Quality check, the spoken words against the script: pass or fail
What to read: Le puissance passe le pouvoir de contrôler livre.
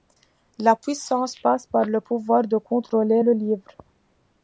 fail